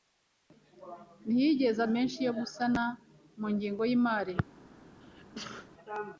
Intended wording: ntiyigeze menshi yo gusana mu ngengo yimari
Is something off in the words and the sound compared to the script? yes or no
yes